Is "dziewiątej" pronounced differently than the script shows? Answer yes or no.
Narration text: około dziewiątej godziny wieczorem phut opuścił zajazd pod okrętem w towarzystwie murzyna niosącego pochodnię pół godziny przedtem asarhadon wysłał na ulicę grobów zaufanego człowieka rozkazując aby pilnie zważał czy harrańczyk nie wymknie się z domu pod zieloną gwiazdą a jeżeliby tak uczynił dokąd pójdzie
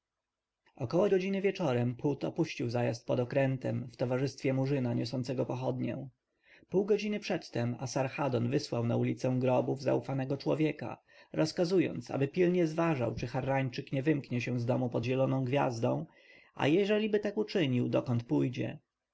yes